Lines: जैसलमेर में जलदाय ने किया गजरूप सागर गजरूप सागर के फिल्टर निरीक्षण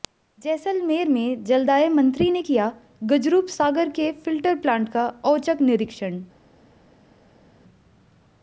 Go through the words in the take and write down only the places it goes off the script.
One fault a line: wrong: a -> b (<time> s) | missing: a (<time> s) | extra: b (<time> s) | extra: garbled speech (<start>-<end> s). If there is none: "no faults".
extra: मंत्री (1.9 s)
wrong: गजरूप सागर के फिल्टर -> के फिल्टर प्लांट का औचक (3.9 s)